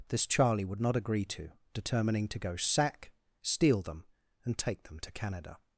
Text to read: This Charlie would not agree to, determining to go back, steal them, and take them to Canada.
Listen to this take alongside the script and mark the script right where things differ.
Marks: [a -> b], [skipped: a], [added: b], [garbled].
This Charlie would not agree to, determining to go [back, -> sack] steal them, and take them to Canada.